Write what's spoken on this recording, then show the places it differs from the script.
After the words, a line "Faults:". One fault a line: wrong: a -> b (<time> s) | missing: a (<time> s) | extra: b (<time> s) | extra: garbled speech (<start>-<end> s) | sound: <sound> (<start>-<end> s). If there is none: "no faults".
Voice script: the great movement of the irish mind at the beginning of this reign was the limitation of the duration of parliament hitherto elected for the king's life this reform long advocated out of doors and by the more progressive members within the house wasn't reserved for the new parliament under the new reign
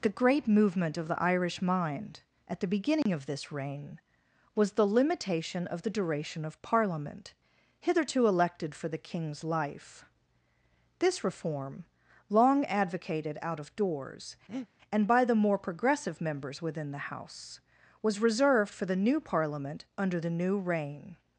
the great movement of the irish mind at the beginning of this reign was the limitation of the duration of parliament hitherto elected for the king's life this reform long advocated out of doors and by the more progressive members within the house was reserved for the new parliament under the new reign
Faults:
sound: dropout (3.0-3.1 s)
sound: breath (14.5-14.7 s)
wrong: wasn't -> was (18.0 s)